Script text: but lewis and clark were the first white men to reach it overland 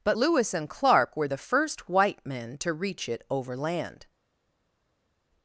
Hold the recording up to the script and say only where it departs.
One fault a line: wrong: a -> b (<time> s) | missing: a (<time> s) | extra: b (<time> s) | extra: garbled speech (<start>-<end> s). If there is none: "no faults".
no faults